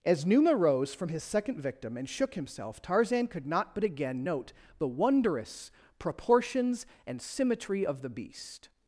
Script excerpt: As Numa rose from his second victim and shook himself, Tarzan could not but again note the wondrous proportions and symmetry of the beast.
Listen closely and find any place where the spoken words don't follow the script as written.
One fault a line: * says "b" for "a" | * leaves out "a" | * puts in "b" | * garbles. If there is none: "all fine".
all fine